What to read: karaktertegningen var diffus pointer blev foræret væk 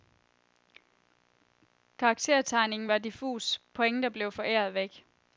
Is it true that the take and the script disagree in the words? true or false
false